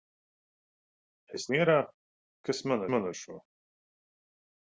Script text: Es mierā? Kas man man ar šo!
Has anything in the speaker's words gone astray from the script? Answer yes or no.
no